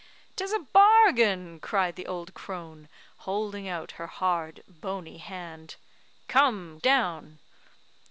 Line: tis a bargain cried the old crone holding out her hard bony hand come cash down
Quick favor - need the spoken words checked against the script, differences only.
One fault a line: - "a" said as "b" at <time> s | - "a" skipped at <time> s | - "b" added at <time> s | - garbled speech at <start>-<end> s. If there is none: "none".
- "cash" skipped at 6.8 s